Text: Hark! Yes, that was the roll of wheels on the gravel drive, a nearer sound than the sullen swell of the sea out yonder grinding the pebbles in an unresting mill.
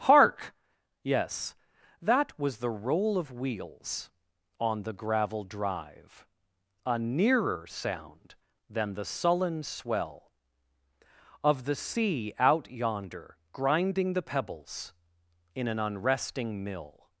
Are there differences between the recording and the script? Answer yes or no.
no